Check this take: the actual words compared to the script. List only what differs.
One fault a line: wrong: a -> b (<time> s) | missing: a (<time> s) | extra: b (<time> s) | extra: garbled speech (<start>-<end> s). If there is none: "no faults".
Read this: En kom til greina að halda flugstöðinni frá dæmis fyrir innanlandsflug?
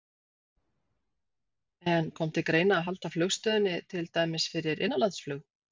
wrong: frá -> til (3.9 s)